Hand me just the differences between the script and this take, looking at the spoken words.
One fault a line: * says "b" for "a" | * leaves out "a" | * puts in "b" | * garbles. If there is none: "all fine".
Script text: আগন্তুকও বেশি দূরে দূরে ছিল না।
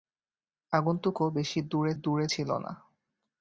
all fine